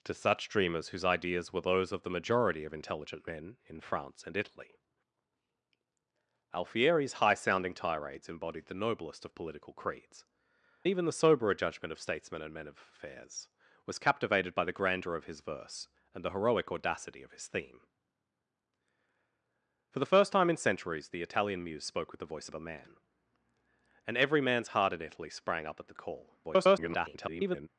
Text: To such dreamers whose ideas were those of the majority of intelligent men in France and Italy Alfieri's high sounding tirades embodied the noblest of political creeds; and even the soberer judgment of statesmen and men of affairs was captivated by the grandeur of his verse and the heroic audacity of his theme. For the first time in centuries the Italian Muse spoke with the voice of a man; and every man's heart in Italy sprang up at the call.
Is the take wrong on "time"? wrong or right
right